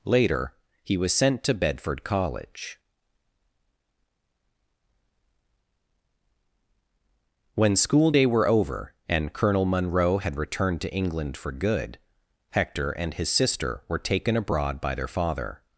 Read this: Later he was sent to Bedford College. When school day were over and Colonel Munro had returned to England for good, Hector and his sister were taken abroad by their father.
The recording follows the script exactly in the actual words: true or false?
true